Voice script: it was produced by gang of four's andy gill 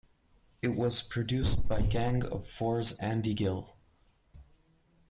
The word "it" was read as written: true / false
true